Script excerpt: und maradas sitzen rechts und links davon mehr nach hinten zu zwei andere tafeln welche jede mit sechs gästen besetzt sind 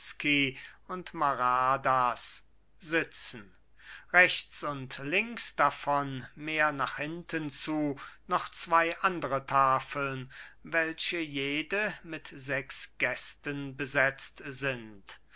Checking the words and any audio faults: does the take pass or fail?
fail